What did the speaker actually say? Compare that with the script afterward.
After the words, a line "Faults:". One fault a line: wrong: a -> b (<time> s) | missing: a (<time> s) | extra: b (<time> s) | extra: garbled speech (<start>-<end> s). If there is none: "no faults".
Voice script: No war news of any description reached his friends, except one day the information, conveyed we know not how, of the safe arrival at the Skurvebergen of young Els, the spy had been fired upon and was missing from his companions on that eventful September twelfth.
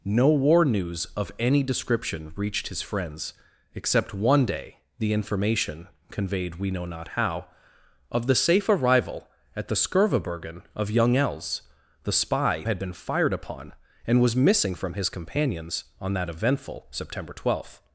No war news of any description reached his friends, except one day the information, conveyed we know not how, of the safe arrival at the Skurvebergen of young Els, the spy had been fired upon and was missing from his companions on that eventful September twelfth.
Faults:
no faults